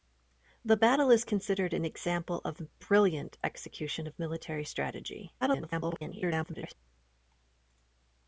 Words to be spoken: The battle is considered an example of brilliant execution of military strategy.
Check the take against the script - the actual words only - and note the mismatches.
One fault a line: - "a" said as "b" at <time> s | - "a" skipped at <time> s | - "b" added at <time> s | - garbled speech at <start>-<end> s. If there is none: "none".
- garbled speech at 5.4-6.8 s